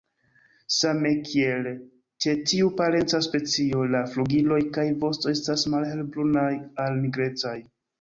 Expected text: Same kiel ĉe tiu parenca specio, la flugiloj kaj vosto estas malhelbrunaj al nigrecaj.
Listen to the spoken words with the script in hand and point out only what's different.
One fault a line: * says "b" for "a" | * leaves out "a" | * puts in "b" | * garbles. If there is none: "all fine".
all fine